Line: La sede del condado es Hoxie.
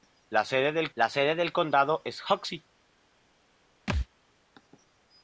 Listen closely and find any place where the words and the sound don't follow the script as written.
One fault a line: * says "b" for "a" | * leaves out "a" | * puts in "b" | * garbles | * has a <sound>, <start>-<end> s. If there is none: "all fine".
* puts in "la sede del"
* has a thud, 3.9-4.1 s